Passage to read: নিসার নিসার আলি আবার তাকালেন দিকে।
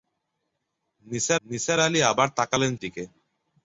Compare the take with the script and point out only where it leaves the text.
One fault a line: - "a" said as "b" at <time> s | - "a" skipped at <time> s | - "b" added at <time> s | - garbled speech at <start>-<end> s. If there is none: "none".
none